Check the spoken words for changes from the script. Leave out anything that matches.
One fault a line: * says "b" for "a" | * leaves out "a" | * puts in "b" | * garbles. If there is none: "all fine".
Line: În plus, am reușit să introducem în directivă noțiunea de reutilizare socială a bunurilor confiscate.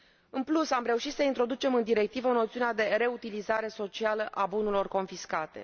all fine